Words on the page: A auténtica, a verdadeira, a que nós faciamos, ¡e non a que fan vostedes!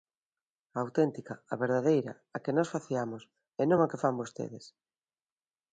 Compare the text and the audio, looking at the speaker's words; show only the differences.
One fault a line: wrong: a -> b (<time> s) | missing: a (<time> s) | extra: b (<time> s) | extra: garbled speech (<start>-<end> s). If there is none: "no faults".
no faults